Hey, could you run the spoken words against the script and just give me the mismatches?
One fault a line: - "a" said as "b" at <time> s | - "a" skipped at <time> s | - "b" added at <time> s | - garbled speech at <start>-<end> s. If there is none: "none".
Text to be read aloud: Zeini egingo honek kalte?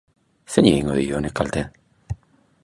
- "dio" added at 1.0 s